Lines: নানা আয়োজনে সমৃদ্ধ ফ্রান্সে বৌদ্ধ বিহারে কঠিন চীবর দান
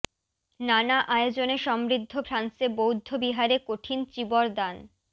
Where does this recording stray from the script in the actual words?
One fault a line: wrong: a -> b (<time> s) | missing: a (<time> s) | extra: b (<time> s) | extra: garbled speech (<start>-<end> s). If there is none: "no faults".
no faults